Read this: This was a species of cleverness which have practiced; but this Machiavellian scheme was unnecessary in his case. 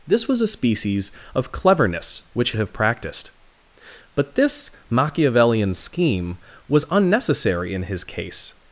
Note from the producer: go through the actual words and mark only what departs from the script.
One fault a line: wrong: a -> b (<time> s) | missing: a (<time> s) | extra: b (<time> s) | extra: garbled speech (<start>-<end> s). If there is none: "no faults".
no faults